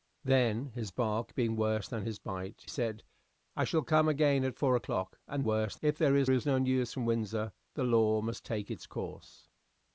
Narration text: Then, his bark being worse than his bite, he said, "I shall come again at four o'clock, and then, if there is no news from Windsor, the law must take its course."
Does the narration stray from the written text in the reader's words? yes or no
yes